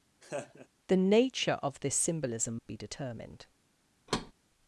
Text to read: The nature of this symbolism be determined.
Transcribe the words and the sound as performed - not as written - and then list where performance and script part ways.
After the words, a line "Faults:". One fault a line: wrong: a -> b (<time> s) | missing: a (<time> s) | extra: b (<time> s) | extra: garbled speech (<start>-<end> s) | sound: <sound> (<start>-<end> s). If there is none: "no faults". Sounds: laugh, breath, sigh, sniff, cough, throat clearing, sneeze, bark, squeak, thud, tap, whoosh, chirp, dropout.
The nature of this symbolism be determined.
Faults:
sound: laugh (0.2-0.7 s)
sound: thud (4.1-4.3 s)